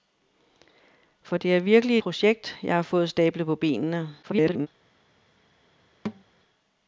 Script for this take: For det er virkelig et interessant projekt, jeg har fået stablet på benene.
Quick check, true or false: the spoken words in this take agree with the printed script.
false